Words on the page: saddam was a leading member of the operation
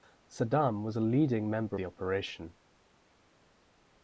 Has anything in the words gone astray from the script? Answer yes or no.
yes